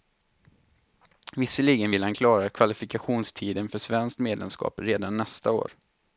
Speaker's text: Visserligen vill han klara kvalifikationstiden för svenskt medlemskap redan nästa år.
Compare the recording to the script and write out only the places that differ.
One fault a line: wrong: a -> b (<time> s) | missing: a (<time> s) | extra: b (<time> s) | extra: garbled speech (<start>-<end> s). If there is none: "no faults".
no faults